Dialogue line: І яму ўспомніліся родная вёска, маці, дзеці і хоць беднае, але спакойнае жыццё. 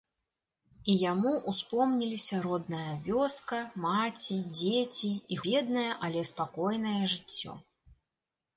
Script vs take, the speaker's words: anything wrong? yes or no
yes